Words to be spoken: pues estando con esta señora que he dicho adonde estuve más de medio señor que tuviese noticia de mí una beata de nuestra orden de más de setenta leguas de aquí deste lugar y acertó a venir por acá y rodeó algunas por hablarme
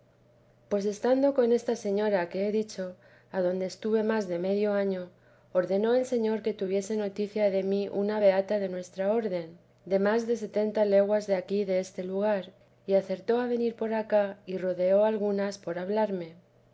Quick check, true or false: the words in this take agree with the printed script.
false